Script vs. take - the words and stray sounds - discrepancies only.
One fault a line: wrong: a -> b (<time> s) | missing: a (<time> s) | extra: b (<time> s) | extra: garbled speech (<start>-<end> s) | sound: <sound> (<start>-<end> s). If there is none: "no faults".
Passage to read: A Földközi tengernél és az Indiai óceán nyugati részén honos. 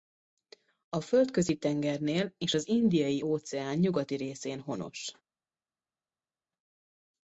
no faults